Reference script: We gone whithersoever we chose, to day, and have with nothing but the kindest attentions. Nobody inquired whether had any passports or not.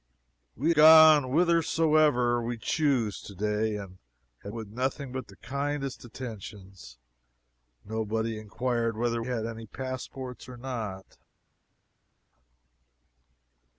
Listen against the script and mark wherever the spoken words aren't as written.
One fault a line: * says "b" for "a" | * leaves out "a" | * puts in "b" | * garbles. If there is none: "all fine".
all fine